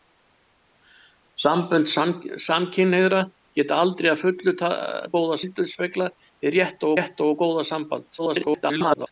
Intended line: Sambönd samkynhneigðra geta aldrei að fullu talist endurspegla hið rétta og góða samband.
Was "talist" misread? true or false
true